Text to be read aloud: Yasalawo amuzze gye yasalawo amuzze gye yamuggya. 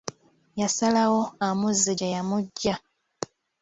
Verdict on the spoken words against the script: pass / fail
fail